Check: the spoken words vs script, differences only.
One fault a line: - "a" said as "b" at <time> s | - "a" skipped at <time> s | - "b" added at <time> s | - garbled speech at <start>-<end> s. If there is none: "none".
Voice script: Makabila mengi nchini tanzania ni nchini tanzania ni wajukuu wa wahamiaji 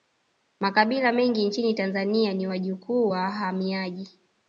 - "nchini tanzania ni" skipped at 2.5 s